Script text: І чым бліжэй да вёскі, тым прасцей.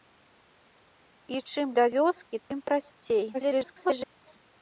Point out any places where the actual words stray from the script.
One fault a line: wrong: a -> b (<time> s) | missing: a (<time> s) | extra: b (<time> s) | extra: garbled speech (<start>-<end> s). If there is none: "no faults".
missing: бліжэй (1.7 s)
extra: garbled speech (3.3-4.4 s)